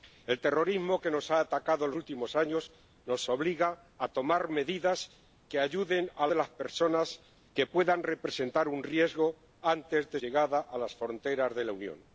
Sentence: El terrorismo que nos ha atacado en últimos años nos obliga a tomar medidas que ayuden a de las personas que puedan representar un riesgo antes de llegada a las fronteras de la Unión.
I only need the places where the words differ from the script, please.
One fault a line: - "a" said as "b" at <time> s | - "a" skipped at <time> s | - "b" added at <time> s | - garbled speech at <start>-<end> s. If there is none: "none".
none